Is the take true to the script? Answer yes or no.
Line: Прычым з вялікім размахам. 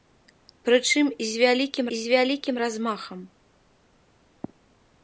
no